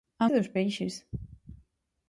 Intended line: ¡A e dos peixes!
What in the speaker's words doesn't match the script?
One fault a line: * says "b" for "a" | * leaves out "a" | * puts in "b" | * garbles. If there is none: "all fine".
all fine